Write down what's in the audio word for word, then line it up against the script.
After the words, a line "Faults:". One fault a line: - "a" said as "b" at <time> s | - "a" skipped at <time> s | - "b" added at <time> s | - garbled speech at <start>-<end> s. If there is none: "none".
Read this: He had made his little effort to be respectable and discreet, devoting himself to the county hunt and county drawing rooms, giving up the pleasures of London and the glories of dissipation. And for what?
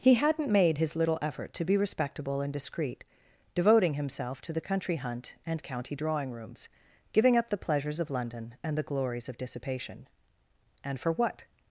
He hadn't made his little effort to be respectable and discreet, devoting himself to the country hunt and county drawing rooms, giving up the pleasures of London and the glories of dissipation. And for what?
Faults:
- "had" said as "hadn't" at 0.1 s
- "county" said as "country" at 4.6 s